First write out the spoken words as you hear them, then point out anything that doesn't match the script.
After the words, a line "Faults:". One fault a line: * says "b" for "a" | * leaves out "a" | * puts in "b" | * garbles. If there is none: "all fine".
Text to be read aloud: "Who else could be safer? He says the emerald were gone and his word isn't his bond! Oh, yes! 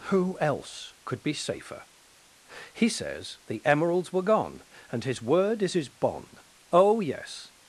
"Who else could be safer? He says the emeralds were gone and his word is his bond! Oh, yes!
Faults:
* says "emeralds" for "emerald"
* says "is" for "isn't"